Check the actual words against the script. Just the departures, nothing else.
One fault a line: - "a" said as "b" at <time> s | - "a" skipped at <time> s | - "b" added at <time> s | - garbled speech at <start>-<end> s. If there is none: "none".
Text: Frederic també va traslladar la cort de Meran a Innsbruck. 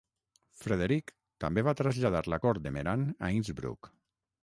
none